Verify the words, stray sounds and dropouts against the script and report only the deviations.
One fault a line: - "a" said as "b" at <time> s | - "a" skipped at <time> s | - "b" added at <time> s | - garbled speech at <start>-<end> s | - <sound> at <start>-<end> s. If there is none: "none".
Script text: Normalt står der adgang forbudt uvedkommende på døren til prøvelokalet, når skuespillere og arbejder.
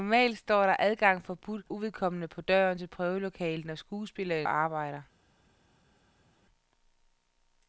none